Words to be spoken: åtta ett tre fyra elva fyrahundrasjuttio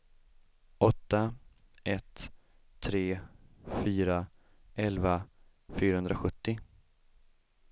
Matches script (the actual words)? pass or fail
pass